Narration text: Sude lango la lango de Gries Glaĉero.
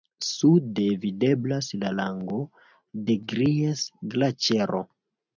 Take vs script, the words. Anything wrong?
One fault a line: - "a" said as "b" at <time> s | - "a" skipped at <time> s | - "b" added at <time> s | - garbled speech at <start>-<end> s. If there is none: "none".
- "lango" said as "videblas" at 1.0 s